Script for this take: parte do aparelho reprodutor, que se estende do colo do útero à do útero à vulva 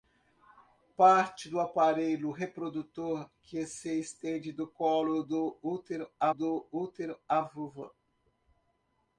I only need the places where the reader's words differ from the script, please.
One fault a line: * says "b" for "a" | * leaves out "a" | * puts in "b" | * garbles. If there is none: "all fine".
all fine